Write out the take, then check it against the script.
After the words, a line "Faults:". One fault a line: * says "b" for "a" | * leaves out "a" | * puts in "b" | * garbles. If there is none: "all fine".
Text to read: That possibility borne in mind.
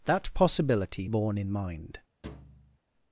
That possibility borne in mind.
Faults:
all fine